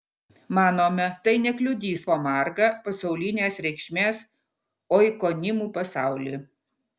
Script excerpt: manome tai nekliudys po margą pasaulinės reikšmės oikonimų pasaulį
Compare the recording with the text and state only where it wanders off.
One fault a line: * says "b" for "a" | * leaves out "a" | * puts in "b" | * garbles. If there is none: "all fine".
all fine